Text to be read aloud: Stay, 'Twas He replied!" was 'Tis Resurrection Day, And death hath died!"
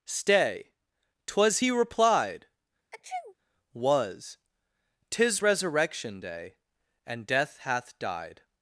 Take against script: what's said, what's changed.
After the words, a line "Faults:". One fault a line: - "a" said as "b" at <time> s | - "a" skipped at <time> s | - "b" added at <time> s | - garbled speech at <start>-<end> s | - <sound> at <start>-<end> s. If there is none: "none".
Stay, 'Twas He replied!" was 'Tis Resurrection Day, And death hath died!"
Faults:
- sneeze at 2.9-3.3 s